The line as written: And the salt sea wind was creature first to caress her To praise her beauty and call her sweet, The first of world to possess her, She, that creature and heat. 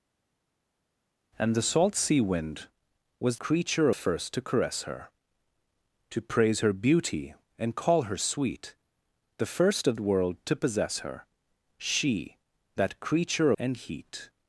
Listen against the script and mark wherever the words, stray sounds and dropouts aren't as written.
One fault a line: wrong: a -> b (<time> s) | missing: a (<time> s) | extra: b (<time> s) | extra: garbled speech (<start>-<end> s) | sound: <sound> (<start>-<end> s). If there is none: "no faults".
no faults